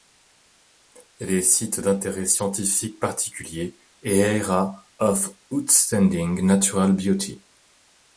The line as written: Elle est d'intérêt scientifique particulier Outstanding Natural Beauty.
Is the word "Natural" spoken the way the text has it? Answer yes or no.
yes